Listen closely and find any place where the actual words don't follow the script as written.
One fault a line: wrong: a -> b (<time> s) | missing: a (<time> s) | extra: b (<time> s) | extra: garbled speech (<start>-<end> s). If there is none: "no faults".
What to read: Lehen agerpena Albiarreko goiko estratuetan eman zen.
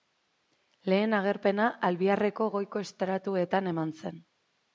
no faults